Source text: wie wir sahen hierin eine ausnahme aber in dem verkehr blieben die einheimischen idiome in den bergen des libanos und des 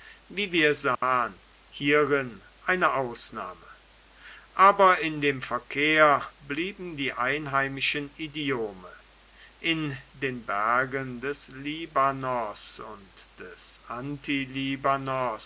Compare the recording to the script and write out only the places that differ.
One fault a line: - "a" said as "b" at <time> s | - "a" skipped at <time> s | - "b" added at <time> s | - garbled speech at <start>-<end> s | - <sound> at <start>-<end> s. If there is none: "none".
- dropout at 1.0-1.0 s